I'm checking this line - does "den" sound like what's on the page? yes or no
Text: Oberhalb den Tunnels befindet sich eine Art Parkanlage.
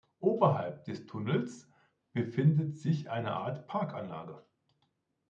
no